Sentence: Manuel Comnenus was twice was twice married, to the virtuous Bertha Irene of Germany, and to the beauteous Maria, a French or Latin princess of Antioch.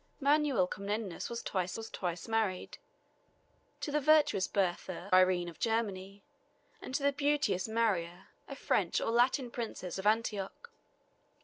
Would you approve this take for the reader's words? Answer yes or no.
yes